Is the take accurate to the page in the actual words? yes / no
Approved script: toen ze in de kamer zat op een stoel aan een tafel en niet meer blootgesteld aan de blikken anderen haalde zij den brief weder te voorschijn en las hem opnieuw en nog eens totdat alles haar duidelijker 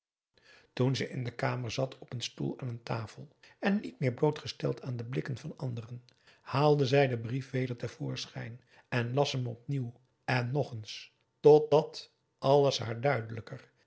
no